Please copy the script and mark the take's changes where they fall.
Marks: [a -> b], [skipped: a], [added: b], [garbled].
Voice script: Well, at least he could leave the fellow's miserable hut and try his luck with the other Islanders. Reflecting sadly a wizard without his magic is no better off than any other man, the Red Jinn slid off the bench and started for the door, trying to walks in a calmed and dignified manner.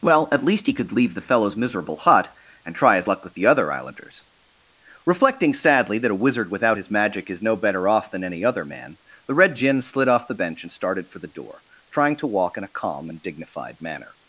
Well, at least he could leave the fellow's miserable hut and try his luck with the other Islanders. Reflecting sadly [added: that] a wizard without his magic is no better off than any other man, the Red Jinn slid off the bench and started for the door, trying to [walks -> walk] in a [calmed -> calm] and dignified manner.